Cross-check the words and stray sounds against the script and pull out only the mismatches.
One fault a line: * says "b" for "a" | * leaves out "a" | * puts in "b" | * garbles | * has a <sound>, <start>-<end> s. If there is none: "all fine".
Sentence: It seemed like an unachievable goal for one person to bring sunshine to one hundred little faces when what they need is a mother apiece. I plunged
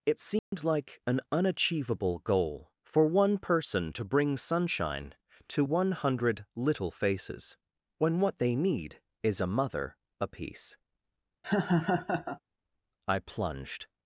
* has a dropout, 0.4-0.5 s
* has a laugh, 11.4-12.4 s